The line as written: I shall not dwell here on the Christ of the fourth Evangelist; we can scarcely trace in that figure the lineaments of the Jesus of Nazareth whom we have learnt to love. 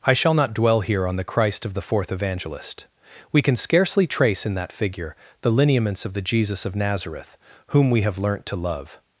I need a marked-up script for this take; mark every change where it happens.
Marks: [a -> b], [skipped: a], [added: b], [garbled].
I shall not dwell here on the Christ of the fourth Evangelist; we can scarcely trace in that figure the lineaments of the Jesus of Nazareth whom we have learnt to love.